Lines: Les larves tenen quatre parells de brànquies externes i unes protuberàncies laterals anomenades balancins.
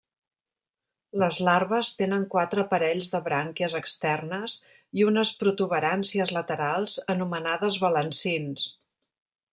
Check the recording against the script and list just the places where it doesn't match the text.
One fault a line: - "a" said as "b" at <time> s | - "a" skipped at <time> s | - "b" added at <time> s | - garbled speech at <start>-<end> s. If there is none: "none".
none